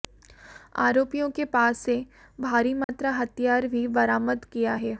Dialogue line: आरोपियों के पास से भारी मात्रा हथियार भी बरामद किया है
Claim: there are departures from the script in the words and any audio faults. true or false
true